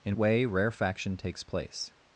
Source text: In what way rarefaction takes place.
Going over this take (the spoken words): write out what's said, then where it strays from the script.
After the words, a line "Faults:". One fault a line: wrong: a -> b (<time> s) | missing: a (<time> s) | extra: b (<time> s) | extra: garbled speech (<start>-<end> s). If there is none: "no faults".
In way rarefaction takes place.
Faults:
missing: what (0.2 s)